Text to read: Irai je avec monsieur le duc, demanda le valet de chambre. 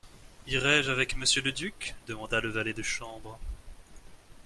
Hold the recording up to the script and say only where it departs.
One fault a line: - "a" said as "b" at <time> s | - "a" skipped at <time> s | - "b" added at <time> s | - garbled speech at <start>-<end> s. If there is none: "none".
none